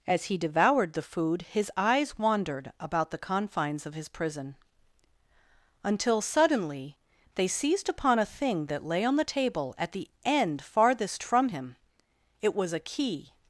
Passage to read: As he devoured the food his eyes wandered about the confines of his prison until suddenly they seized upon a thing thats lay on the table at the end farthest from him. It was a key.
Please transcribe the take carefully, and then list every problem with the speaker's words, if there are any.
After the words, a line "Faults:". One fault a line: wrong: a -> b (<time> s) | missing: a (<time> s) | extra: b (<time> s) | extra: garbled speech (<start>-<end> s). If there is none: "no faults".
As he devoured the food his eyes wandered about the confines of his prison until suddenly they seized upon a thing that lay on the table at the end farthest from him. It was a key.
Faults:
wrong: thats -> that (8.7 s)